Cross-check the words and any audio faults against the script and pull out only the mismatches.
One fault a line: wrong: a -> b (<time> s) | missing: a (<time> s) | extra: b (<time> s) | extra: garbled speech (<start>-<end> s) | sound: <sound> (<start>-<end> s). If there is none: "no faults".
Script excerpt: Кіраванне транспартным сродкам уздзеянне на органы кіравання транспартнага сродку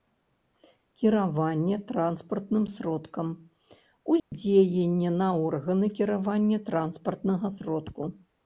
sound: dropout (4.2-4.3 s)